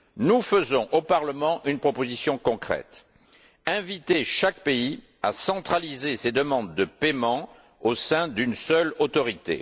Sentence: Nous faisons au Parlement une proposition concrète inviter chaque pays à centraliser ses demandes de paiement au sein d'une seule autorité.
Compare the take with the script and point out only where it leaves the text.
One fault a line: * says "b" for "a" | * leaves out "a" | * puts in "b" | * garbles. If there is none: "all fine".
all fine